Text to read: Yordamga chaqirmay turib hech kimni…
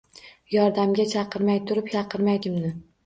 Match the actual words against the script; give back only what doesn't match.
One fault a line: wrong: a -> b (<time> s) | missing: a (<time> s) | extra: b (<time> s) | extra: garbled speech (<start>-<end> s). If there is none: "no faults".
wrong: hech -> chaqirmay (1.9 s)